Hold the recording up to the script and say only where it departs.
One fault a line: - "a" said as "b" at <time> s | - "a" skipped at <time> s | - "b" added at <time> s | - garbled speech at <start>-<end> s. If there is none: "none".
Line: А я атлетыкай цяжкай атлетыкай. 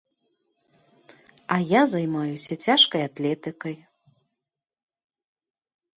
- "атлетыкай" said as "займаюся" at 1.9 s